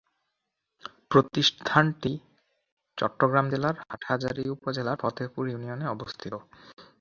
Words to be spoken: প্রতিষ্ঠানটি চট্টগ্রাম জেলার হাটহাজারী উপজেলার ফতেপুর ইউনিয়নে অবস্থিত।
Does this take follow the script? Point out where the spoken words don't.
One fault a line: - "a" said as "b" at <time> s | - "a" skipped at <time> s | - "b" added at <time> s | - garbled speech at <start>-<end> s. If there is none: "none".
none